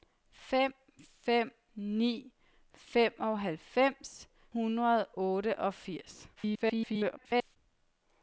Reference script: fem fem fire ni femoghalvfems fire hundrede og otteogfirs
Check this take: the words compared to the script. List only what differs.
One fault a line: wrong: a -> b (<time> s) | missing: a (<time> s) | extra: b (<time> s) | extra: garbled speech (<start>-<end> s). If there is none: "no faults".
missing: fire (1.5 s)
missing: fire (4.3 s)
extra: garbled speech (6.4-7.6 s)